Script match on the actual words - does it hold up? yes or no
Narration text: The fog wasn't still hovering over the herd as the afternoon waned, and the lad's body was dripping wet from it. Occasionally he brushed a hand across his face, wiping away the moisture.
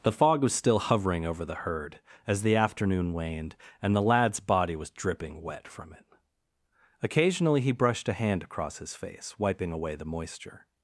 no